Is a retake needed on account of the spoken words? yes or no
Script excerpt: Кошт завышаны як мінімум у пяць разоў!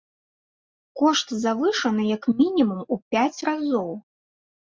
no